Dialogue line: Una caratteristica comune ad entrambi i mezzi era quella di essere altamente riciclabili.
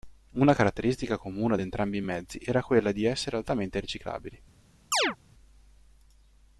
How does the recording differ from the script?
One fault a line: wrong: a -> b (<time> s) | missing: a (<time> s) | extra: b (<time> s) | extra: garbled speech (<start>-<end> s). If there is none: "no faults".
no faults